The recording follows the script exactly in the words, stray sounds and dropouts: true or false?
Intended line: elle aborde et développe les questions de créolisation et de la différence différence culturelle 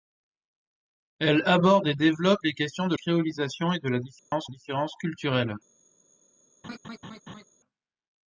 false